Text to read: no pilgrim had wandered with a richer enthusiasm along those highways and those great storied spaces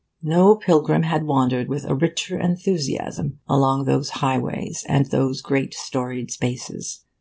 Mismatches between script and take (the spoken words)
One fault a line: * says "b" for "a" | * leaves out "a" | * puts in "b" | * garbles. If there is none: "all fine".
all fine